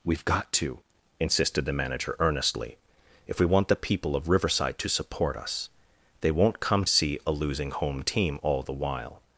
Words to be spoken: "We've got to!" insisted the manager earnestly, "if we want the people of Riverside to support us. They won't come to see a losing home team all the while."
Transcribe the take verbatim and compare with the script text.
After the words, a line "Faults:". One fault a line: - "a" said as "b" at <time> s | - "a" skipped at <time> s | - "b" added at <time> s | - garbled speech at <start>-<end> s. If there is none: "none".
"We've got to!" insisted the manager earnestly, "if we want the people of Riverside to support us. They won't come see a losing home team all the while."
Faults:
- "to" skipped at 6.8 s